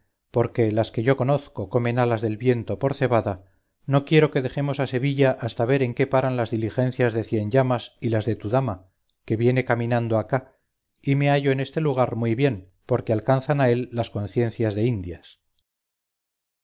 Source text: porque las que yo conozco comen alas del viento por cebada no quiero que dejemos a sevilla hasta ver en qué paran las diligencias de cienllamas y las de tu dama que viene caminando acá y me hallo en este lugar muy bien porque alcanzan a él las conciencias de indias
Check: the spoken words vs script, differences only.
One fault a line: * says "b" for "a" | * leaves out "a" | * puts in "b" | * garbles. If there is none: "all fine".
all fine